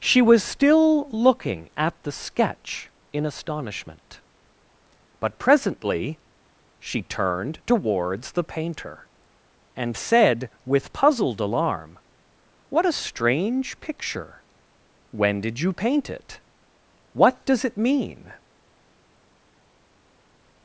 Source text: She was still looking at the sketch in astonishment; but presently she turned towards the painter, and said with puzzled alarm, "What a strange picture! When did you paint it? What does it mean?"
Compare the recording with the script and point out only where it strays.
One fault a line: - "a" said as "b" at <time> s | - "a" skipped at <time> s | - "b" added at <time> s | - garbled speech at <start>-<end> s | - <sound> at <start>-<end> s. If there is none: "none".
none